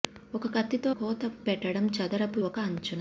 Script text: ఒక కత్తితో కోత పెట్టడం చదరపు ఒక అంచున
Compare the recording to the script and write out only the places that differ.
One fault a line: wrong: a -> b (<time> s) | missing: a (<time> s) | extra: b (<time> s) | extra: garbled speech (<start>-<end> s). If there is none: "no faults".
no faults